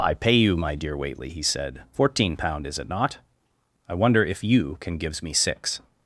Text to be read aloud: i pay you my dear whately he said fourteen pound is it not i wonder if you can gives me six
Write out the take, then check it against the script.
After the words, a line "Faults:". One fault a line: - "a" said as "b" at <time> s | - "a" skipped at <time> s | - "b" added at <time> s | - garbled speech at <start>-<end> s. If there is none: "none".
i pay you my dear whately he said fourteen pound is it not i wonder if you can gives me six
Faults:
none